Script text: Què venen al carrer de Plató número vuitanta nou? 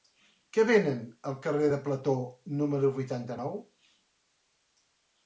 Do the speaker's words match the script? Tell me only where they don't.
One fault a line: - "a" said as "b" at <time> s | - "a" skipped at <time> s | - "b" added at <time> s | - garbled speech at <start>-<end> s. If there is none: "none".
none